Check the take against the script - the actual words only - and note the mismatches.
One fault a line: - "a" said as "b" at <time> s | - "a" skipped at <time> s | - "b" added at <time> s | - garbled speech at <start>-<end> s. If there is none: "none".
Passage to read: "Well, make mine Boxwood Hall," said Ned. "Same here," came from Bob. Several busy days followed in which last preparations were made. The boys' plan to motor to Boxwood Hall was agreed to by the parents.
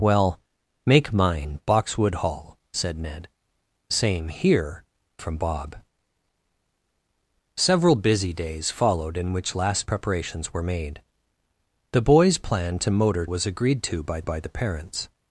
- "came" skipped at 4.8 s
- "to Boxwood Hall" skipped at 13.3 s
- "by" added at 14.2 s